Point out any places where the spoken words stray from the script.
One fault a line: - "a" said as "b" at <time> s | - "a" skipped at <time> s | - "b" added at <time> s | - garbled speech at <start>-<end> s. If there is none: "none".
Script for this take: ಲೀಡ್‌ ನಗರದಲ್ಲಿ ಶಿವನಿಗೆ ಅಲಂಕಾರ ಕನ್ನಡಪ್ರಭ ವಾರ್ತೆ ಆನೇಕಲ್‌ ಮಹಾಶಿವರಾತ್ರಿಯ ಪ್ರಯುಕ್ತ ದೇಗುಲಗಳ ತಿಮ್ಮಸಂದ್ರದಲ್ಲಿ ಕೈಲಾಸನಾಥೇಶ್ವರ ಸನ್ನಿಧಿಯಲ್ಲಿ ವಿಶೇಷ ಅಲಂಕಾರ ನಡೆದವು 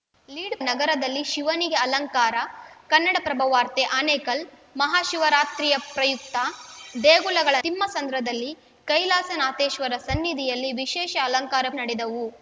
none